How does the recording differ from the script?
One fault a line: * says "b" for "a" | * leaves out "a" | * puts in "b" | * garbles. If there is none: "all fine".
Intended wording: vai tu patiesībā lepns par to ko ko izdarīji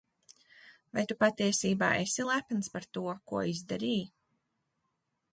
* puts in "esi"
* leaves out "ko"